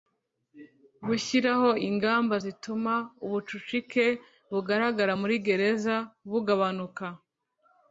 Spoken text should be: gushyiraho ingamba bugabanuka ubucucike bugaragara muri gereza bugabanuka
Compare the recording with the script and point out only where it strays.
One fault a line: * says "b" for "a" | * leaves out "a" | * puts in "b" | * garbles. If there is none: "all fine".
* says "zituma" for "bugabanuka"